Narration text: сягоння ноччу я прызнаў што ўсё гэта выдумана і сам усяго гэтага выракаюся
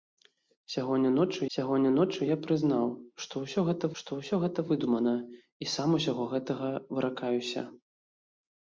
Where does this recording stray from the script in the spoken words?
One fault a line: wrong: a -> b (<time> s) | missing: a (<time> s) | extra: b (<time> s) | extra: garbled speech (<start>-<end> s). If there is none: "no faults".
extra: сягоння ноччу (1.6 s)
extra: што ўсё гэта (4.0 s)